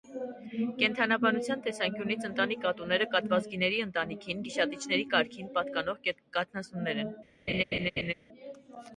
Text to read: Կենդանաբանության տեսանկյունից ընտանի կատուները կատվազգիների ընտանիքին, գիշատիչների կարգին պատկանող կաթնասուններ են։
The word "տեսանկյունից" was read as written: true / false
true